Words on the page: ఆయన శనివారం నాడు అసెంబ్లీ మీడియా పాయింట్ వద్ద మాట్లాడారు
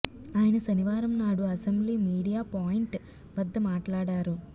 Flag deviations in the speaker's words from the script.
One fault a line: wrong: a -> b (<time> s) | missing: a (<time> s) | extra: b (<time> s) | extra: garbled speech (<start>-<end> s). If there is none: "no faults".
no faults